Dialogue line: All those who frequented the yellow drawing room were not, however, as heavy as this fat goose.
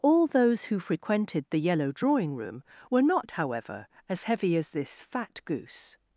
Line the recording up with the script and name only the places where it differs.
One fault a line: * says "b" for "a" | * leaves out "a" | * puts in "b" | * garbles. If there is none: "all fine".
all fine